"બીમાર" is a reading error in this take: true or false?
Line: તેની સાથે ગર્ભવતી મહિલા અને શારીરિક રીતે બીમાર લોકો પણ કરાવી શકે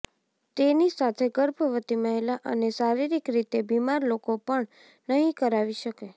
false